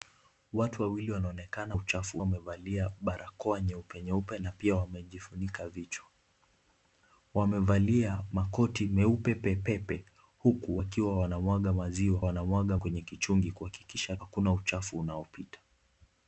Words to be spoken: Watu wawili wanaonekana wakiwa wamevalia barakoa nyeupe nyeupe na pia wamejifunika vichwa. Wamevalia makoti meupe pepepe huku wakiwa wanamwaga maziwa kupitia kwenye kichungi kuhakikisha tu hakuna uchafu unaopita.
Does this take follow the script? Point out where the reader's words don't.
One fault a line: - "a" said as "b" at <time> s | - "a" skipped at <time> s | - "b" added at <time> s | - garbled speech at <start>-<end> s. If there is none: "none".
- "wakiwa" said as "uchafu" at 1.7 s
- "kupitia" said as "wanamwaga" at 12.2 s
- "tu" skipped at 14.2 s